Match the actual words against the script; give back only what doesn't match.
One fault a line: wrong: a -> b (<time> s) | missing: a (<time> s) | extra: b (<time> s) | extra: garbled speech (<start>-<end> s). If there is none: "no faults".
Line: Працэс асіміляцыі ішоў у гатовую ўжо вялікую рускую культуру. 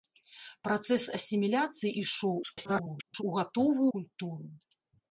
extra: garbled speech (2.4-3.2 s)
missing: ўжо вялікую рускую (3.9 s)